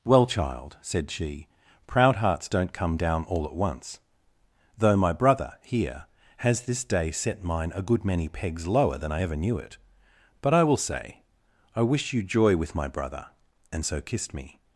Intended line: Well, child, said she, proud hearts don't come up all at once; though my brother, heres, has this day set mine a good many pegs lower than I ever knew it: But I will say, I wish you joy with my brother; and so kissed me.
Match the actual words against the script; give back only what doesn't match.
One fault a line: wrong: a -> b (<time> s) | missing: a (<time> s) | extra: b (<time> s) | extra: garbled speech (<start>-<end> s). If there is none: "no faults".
wrong: up -> down (3.0 s)
wrong: heres -> here (5.6 s)